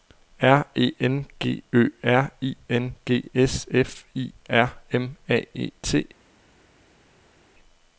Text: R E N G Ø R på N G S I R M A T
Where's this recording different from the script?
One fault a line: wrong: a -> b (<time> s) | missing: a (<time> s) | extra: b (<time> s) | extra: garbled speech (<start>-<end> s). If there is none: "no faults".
wrong: på -> I (2.4 s)
extra: F (3.7 s)
extra: E (5.5 s)